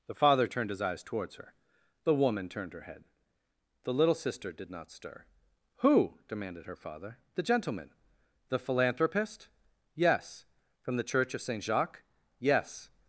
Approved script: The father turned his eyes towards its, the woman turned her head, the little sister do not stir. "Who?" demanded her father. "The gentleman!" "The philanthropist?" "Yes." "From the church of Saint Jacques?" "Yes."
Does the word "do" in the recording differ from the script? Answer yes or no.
yes